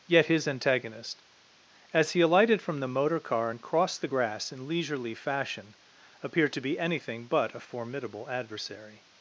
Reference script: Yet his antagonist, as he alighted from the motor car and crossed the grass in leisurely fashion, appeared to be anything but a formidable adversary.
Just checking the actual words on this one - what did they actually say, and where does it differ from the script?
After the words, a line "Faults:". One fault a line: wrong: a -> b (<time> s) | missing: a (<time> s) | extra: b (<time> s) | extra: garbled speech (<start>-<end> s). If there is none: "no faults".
Yet his antagonist, as he alighted from the motor car and crossed the grass in leisurely fashion, appeared to be anything but a formidable adversary.
Faults:
no faults